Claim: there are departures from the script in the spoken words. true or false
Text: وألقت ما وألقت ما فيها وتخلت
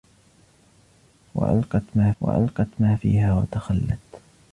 false